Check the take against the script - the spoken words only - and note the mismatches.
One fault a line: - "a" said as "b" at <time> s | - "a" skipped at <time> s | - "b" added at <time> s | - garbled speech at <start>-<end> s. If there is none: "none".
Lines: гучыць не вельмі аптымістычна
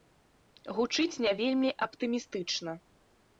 none